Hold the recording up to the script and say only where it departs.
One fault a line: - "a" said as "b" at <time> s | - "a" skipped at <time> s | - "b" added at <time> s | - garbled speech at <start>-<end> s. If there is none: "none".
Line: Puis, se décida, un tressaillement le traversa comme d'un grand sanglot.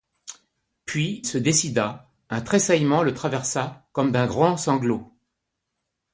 none